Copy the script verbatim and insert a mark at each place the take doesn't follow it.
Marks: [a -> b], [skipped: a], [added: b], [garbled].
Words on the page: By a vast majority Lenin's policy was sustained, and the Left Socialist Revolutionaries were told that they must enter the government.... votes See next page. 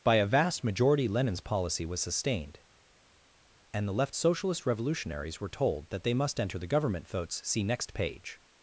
By a vast majority Lenin's policy was sustained, and the Left Socialist Revolutionaries were told that they must enter the government.... votes See next page.